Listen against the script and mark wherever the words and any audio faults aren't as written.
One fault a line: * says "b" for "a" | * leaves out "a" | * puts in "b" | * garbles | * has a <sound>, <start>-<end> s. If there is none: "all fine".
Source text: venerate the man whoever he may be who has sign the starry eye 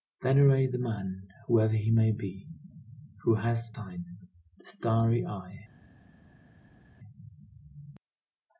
all fine